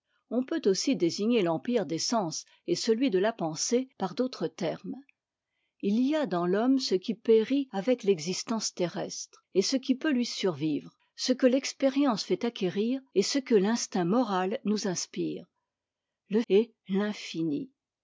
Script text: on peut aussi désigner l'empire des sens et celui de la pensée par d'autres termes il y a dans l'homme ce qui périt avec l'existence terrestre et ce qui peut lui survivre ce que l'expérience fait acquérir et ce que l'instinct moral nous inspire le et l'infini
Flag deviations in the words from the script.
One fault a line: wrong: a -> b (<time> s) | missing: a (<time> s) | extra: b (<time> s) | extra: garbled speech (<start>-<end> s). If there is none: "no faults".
no faults